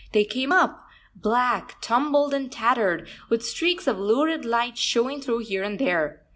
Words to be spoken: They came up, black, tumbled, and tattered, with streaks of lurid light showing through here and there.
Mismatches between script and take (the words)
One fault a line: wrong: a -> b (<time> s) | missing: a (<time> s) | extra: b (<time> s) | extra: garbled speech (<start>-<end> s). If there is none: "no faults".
no faults